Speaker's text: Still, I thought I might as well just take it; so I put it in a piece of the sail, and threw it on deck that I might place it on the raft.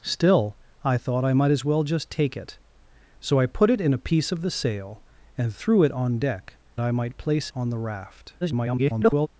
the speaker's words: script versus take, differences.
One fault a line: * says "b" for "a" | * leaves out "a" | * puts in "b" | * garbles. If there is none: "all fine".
* leaves out "that"
* leaves out "it"
* garbles